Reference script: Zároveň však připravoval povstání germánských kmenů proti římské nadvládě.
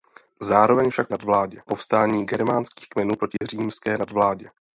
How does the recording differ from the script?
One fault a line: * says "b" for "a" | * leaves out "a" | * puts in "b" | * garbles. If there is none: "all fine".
* says "nadvládě" for "připravoval"